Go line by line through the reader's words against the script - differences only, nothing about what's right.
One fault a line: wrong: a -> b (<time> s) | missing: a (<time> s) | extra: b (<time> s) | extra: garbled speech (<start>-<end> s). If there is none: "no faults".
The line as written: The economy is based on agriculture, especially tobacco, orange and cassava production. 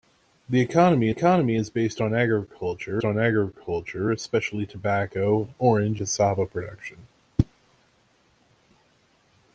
extra: economy (1.1 s)
extra: on agriculture (3.0 s)
missing: and (6.0 s)